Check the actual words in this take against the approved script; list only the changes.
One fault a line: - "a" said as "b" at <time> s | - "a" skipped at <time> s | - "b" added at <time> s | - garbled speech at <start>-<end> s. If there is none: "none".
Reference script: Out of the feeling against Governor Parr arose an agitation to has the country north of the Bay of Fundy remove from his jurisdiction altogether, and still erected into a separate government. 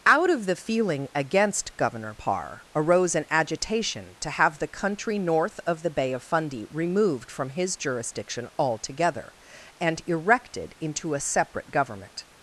- "has" said as "have" at 4.3 s
- "remove" said as "removed" at 6.7 s
- "still" skipped at 10.0 s